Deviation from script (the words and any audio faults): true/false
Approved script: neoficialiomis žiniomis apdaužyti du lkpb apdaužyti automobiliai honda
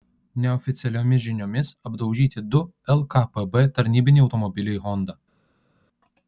true